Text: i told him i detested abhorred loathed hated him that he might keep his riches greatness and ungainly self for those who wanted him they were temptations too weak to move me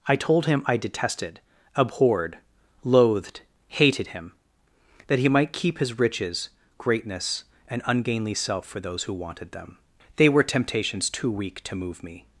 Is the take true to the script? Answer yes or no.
no